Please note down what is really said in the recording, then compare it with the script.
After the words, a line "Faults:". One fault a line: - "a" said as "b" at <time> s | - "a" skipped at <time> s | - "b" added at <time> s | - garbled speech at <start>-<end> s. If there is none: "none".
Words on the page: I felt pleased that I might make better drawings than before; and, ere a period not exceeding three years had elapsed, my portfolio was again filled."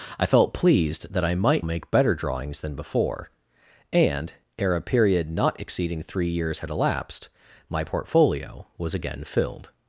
I felt pleased that I might make better drawings than before; and, ere a period not exceeding three years had elapsed, my portfolio was again filled."
Faults:
none